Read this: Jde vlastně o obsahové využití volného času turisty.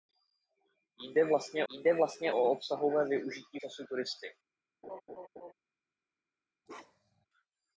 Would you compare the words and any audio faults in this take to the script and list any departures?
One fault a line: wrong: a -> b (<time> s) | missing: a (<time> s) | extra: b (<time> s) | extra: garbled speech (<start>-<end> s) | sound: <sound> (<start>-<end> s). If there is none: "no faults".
extra: jde vlastně (1.7 s)
missing: volného (3.6 s)
sound: laugh (4.8-5.5 s)
sound: bark (6.7-7.3 s)